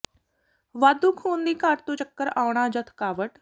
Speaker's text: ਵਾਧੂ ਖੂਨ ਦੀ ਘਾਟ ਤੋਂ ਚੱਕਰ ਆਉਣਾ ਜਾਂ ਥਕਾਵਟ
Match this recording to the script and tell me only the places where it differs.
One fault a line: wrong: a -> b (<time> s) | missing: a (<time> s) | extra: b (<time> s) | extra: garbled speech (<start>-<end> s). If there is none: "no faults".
no faults